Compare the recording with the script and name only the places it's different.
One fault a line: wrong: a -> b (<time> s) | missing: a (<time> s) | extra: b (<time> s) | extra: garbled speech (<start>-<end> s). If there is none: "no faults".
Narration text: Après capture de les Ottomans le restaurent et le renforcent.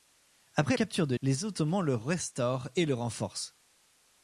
no faults